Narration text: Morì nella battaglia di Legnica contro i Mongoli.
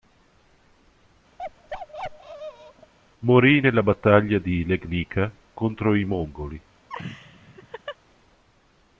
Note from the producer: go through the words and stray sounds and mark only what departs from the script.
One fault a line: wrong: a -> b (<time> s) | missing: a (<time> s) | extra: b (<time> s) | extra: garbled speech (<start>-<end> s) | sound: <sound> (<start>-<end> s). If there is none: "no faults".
sound: bark (1.4-2.9 s)
sound: laugh (6.9-8.0 s)